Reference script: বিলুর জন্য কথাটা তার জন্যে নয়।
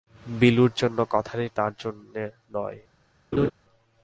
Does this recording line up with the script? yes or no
yes